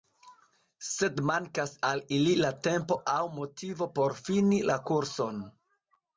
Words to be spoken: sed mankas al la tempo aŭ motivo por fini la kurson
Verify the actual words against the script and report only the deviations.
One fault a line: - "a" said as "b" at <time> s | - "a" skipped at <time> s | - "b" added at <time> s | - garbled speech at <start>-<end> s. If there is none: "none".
- "ili" added at 2.2 s